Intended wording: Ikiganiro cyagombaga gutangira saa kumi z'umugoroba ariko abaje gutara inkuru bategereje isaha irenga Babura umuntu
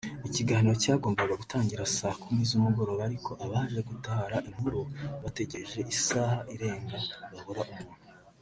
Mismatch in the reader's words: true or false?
false